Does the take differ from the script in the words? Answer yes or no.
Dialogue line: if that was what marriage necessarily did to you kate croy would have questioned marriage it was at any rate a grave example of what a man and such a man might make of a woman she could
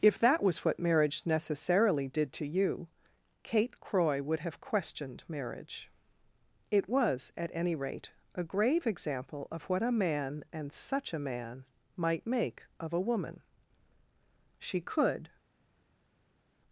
no